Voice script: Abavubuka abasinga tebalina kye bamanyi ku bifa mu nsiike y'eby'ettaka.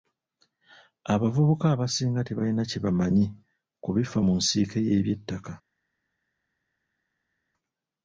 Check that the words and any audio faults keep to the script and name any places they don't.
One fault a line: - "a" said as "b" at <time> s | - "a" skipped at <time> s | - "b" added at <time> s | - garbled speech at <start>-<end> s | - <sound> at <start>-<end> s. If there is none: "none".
none